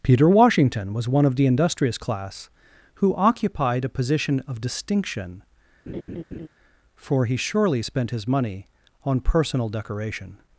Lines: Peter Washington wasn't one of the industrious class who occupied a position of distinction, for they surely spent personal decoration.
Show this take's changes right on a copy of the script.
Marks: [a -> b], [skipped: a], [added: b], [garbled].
Peter Washington [wasn't -> was] one of the industrious class who occupied a position of distinction, for [they -> he] surely spent [added: his money on] personal decoration.